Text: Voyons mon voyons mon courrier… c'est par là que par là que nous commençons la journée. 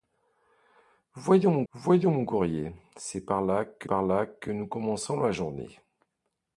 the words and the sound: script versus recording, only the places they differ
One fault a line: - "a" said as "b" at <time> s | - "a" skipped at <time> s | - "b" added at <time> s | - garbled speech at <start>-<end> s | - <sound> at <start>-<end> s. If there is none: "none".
none